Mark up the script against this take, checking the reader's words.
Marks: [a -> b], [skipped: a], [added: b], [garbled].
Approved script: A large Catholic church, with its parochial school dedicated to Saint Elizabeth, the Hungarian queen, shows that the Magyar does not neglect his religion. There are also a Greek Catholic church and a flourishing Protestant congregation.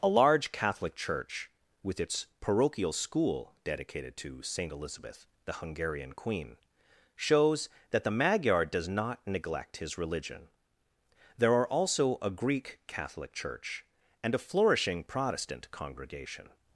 A large Catholic church, with its parochial school dedicated to Saint Elizabeth, the Hungarian queen, shows that the Magyar does not neglect his religion. There are also a Greek Catholic church and a flourishing Protestant congregation.